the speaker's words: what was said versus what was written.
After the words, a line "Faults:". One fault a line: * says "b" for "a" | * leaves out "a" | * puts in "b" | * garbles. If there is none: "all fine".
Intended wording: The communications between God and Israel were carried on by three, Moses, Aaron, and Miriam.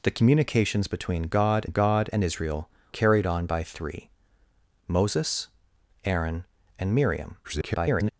The communications between God God and Israel carried on by three, Moses, Aaron, and Miriam. [garbled]
Faults:
* puts in "God"
* leaves out "were"
* garbles